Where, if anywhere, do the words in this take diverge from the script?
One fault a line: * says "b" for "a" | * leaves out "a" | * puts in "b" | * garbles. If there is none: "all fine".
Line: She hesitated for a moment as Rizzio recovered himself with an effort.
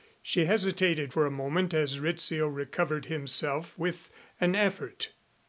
all fine